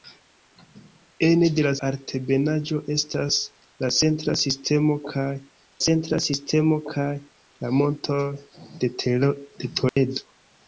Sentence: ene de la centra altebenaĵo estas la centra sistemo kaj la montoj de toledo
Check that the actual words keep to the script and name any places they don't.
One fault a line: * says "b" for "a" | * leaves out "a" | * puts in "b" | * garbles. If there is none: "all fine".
* leaves out "centra"
* puts in "centra sistemo kaj"